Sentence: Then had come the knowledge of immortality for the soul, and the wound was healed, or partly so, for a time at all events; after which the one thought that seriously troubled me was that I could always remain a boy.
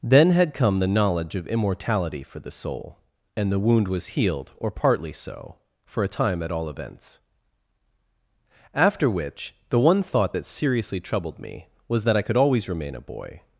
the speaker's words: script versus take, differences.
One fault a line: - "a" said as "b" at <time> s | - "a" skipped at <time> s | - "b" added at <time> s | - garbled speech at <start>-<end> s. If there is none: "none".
none